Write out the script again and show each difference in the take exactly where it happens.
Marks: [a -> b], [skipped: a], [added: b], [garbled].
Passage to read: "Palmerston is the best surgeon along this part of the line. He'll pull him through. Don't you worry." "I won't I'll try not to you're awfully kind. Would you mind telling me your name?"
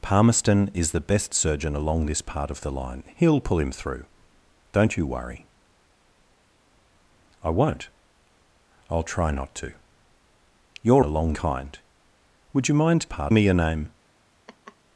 "Palmerston is the best surgeon along this part of the line. He'll pull him through. Don't you worry." "I won't I'll try not to you're [awfully -> along] kind. Would you mind [telling -> part] me your name?"